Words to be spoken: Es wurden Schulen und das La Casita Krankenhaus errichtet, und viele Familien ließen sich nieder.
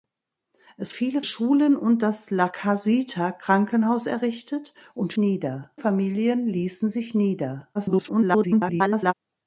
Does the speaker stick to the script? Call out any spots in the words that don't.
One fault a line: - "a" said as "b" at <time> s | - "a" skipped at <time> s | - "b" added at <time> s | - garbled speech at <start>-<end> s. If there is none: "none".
- "wurden" said as "viele" at 0.9 s
- "viele" said as "nieder" at 5.2 s
- garbled speech at 7.7-9.1 s